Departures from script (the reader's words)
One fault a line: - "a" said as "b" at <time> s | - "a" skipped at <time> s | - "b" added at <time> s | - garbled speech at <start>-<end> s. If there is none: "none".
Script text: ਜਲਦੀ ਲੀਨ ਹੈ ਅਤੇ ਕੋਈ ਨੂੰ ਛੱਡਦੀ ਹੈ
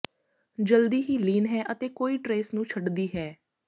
- "ਹੀ" added at 1.0 s
- "ਟਰੇਸ" added at 2.2 s